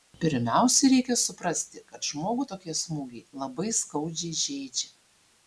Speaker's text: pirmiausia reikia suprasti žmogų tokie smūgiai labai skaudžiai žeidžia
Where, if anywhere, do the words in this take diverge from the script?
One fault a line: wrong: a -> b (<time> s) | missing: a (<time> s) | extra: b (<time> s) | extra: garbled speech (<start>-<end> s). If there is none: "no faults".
extra: kad (1.9 s)